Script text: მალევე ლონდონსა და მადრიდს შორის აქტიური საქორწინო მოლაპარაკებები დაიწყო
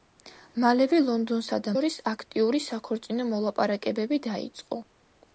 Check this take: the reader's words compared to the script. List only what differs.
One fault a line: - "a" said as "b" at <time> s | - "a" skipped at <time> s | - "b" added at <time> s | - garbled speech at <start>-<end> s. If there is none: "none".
- "მადრიდს" skipped at 1.7 s